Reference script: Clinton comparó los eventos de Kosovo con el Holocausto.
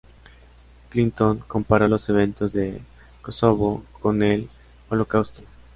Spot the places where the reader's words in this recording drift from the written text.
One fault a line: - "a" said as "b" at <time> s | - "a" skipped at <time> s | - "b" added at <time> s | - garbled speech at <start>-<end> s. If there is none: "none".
none